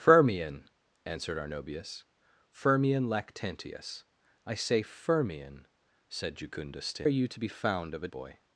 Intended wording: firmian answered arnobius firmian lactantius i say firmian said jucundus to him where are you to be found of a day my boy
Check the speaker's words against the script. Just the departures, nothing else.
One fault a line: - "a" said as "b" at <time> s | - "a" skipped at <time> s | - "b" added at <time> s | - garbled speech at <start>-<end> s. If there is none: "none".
- "him where" skipped at 7.0 s
- "day my" skipped at 8.1 s